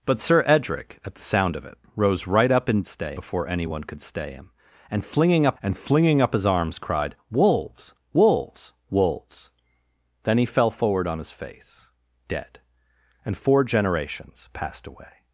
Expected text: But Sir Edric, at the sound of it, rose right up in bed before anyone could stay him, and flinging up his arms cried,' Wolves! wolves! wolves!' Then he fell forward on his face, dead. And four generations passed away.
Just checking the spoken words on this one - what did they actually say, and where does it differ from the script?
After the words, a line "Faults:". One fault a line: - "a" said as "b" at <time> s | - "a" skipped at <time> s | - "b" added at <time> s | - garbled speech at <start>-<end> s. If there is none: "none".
But Sir Edric, at the sound of it, rose right up in stay before anyone could stay him, and flinging up and flinging up his arms cried,' Wolves! wolves! wolves!' Then he fell forward on his face, dead. And four generations passed away.
Faults:
- "bed" said as "stay" at 2.9 s
- "and flinging up" added at 5.6 s